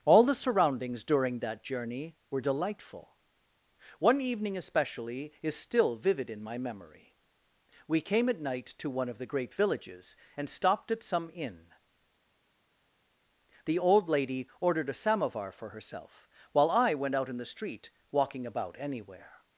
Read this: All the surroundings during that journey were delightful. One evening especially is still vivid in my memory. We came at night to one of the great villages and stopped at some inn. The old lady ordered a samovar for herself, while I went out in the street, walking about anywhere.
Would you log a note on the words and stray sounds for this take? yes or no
no